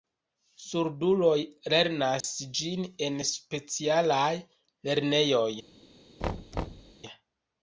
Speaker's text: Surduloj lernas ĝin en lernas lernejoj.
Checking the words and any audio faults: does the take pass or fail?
fail